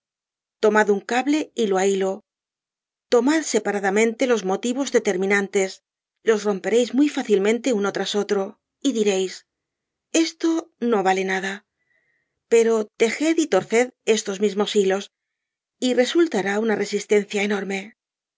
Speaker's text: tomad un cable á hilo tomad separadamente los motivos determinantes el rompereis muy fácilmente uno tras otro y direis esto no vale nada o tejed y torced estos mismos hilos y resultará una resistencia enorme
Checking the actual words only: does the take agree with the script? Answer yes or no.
no